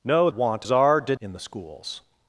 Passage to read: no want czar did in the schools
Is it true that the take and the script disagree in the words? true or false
false